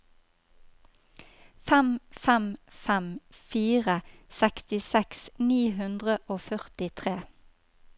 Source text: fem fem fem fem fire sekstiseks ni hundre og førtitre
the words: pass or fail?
fail